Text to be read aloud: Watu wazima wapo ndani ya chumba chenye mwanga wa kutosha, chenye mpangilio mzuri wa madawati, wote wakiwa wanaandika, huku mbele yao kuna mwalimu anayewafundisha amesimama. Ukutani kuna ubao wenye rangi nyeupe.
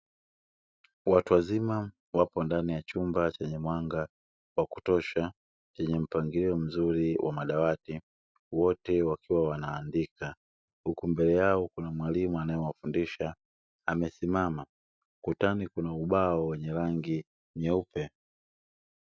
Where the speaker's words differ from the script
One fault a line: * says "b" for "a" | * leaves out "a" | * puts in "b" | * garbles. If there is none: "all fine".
all fine